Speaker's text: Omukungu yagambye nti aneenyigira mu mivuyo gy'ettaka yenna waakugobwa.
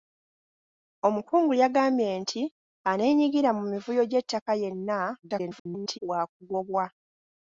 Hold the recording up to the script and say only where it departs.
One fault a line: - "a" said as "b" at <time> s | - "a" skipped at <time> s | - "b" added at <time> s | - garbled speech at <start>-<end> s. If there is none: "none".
- garbled speech at 5.2-6.0 s